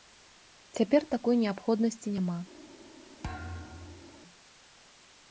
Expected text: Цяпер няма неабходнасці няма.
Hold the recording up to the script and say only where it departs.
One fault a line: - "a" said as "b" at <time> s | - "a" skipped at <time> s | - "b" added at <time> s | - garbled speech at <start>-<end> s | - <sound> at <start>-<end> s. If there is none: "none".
- "няма" said as "такой" at 1.1 s
- thud at 3.2-4.2 s